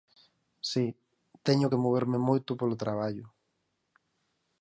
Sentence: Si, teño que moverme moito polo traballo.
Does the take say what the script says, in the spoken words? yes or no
yes